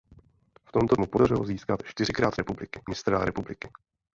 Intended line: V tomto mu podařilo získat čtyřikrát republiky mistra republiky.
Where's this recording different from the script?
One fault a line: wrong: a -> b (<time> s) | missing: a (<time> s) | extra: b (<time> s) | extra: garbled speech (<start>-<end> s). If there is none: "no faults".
no faults